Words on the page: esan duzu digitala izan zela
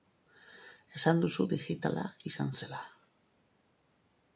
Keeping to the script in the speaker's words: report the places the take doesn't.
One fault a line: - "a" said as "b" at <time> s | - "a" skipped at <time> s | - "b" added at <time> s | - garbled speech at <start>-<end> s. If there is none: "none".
none